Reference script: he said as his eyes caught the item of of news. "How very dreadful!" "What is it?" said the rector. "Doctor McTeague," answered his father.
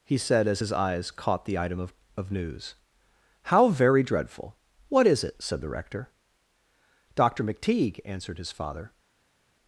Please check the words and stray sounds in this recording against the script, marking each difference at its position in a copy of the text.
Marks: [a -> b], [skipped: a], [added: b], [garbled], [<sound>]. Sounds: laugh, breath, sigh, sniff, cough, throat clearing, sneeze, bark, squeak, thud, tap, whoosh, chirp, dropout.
he said as his eyes caught the item of of news. "How very dreadful!" "What is it?" said the rector. "Doctor McTeague," answered his father.